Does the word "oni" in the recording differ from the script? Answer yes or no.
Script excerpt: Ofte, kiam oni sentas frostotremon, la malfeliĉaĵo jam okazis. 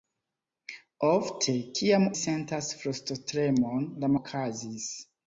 yes